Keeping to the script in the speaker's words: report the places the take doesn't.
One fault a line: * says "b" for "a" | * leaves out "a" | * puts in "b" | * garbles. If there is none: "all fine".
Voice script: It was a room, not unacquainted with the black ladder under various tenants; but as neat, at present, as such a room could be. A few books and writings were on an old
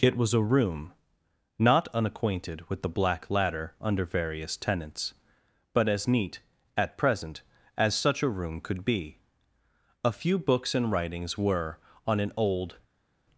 all fine